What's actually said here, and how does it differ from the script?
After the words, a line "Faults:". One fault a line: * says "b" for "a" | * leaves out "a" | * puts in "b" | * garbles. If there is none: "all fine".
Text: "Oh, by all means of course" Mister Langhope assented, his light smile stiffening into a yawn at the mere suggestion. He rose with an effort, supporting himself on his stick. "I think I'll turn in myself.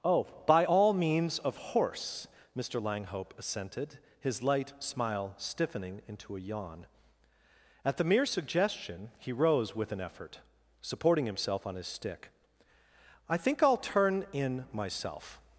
"Oh, by all means of horse" Mister Langhope assented, his light smile stiffening into a yawn at the mere suggestion. He rose with an effort, supporting himself on his stick. "I think I'll turn in myself.
Faults:
* says "horse" for "course"